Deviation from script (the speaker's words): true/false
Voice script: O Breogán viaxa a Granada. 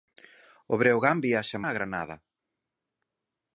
false